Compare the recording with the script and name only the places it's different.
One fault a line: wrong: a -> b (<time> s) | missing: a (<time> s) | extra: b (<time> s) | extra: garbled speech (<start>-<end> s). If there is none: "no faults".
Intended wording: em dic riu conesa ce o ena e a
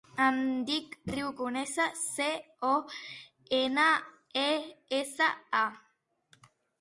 extra: essa (5.0 s)